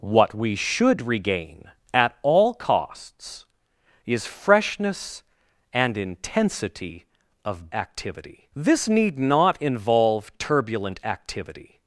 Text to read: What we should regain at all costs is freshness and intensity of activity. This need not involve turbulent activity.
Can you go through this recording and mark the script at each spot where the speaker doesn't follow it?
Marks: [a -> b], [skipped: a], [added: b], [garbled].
What we should regain at all costs is freshness and intensity of activity. This need not involve turbulent activity.